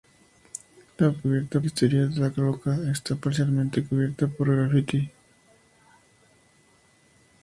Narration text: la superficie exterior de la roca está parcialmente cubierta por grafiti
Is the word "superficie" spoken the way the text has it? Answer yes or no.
no